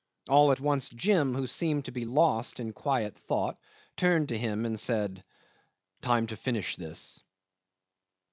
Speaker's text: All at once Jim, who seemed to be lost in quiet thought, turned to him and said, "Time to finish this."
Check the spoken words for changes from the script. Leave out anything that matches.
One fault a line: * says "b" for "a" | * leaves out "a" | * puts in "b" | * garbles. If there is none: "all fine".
all fine